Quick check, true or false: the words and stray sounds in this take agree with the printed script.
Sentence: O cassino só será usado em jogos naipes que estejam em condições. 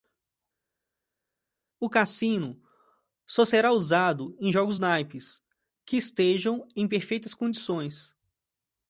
false